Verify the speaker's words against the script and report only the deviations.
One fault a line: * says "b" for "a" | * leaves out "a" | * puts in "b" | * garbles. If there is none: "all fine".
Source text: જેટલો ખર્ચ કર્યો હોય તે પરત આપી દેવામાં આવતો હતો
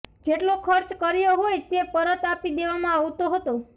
all fine